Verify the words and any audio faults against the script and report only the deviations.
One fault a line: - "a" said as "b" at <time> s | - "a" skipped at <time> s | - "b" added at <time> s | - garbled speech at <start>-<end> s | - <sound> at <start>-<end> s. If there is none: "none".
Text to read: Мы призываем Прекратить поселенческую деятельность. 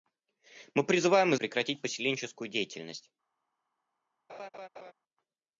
- laugh at 4.3-4.9 s